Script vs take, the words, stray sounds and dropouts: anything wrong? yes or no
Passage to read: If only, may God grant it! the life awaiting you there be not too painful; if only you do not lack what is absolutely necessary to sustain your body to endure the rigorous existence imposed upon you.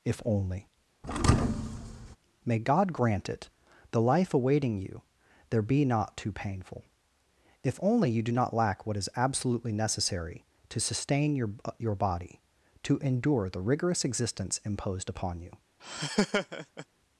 yes